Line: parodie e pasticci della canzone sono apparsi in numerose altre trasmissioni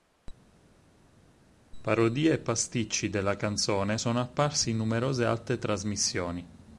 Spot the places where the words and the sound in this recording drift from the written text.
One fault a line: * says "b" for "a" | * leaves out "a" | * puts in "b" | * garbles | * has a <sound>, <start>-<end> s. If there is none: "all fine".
all fine